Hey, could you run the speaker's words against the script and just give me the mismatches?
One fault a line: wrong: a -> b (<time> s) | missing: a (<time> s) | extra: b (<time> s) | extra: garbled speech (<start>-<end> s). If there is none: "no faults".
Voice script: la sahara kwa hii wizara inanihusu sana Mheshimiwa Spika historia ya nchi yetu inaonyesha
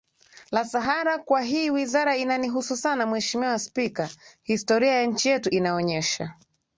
no faults